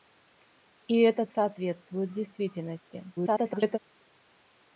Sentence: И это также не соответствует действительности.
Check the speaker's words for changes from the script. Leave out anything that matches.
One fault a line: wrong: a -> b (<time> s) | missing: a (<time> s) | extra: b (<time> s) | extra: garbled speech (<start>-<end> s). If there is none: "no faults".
missing: также не (1.3 s)
extra: garbled speech (3.2-3.8 s)